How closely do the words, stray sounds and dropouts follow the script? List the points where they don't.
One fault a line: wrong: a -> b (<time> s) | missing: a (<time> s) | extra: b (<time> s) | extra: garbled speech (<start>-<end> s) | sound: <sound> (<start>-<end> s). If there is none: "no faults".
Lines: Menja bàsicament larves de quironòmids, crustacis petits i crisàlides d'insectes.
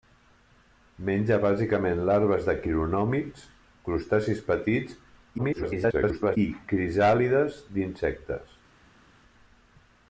extra: garbled speech (5.4-6.4 s)